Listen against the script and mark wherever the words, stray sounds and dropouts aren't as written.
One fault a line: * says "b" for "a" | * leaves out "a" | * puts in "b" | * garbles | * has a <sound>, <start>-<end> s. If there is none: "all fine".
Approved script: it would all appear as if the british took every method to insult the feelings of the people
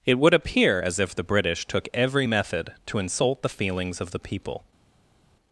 * leaves out "all"